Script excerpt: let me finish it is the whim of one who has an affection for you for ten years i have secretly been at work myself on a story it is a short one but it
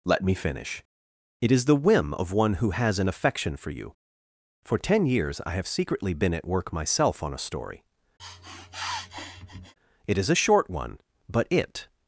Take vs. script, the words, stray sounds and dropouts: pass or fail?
fail